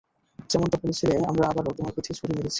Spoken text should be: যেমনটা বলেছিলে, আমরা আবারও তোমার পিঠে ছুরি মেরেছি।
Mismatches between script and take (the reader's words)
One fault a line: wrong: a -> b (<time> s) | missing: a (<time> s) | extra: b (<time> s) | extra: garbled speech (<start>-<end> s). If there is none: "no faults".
no faults